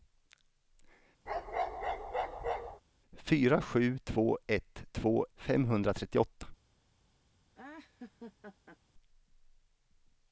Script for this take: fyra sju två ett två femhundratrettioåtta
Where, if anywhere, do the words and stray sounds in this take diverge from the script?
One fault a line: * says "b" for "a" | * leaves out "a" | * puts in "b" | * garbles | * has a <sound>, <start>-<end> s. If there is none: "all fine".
* has a bark, 1.3-2.8 s
* has a laugh, 7.5-8.8 s